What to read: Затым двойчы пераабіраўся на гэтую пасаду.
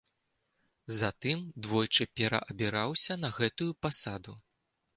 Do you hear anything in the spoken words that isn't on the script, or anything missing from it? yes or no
no